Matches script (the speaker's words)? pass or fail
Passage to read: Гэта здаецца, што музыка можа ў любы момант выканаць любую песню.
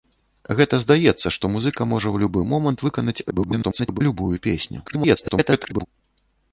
fail